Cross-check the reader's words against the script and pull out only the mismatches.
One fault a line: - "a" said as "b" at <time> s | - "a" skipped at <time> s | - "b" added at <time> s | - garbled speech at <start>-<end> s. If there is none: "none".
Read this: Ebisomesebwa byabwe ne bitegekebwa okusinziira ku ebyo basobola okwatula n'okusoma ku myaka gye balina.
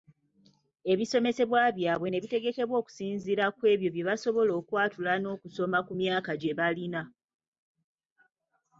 - "bye" added at 3.9 s